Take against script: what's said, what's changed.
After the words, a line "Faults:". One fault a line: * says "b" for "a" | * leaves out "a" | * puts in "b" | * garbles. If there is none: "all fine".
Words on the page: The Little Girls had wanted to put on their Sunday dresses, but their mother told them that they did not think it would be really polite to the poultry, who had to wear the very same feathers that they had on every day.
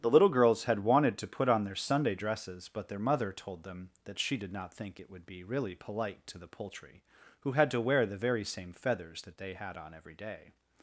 The Little Girls had wanted to put on their Sunday dresses, but their mother told them that she did not think it would be really polite to the poultry, who had to wear the very same feathers that they had on every day.
Faults:
* says "she" for "they"